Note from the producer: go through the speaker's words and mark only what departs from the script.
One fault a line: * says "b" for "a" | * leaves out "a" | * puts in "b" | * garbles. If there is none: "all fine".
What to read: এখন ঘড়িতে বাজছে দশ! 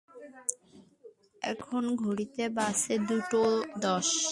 all fine